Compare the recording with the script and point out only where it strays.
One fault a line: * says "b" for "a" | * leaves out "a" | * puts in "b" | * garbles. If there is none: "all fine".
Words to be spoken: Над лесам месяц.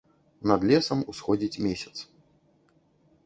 * puts in "усходзіць"